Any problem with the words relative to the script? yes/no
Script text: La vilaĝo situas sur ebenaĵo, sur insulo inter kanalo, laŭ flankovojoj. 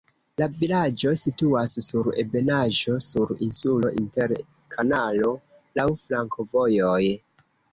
no